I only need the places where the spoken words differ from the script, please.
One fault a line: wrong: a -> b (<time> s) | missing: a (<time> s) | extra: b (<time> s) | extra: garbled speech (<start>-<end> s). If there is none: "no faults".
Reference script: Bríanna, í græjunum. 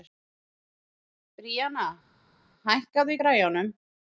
extra: hækkaðu (2.7 s)